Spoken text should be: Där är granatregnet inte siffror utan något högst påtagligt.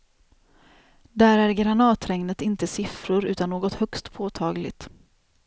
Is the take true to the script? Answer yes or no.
yes